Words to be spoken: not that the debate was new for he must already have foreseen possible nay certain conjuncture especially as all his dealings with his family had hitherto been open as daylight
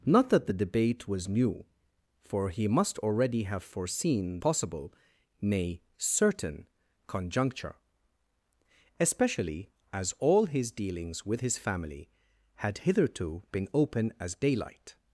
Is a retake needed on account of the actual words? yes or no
no